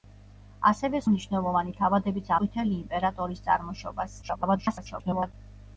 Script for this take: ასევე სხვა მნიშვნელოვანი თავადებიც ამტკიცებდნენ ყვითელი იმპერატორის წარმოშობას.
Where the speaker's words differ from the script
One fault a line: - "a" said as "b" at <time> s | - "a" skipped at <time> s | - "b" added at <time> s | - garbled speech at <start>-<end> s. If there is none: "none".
- "სხვა" skipped at 1.0 s
- "ამტკიცებდნენ" skipped at 2.3 s
- garbled speech at 4.2-5.3 s